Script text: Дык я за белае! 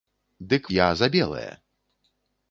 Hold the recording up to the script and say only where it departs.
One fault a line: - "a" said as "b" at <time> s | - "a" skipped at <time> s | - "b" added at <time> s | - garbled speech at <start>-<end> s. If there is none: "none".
none